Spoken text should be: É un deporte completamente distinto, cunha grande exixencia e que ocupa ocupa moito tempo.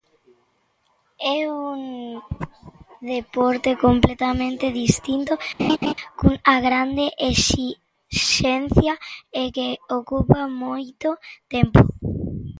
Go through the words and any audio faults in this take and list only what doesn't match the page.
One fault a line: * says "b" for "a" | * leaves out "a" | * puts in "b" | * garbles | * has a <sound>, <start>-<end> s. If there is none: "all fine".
* has a laugh, 5.6-5.9 s
* leaves out "ocupa"